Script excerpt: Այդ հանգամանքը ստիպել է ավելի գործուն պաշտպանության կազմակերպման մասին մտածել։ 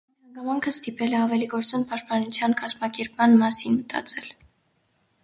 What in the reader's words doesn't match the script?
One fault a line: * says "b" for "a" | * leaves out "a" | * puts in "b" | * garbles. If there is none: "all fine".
all fine